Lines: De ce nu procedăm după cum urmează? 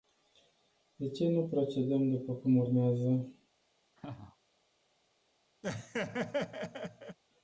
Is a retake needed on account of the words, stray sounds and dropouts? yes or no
yes